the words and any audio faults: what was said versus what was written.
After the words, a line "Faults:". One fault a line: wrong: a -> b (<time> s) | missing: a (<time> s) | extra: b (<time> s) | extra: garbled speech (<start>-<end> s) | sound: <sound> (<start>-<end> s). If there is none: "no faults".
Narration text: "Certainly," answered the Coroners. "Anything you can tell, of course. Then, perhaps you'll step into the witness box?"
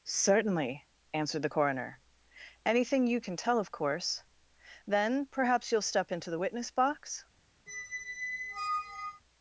"Certainly," answered the Coroner. "Anything you can tell, of course. Then, perhaps you'll step into the witness box?"
Faults:
wrong: Coroners -> Coroner (1.5 s)
sound: squeak (7.7-9.2 s)